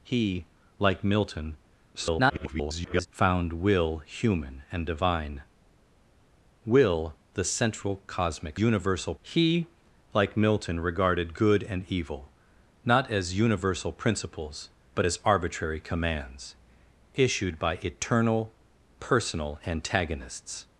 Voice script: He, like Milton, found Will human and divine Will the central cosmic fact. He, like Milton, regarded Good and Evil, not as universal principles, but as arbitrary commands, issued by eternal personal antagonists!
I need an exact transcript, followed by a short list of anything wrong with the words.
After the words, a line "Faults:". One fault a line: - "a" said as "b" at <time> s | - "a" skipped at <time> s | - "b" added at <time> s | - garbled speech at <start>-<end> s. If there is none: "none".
He, like Milton, [garbled] found Will human and divine Will the central cosmic universal. He, like Milton, regarded Good and Evil, not as universal principles, but as arbitrary commands, issued by eternal personal antagonists!
Faults:
- garbled speech at 1.9-3.1 s
- "fact" said as "universal" at 8.6 s